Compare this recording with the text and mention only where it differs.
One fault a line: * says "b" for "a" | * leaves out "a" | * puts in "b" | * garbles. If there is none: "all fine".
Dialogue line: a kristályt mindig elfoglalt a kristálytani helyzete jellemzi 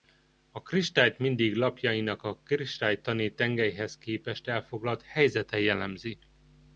* says "lapjainak" for "elfoglalt"
* puts in "tengelyhez képest elfoglalt"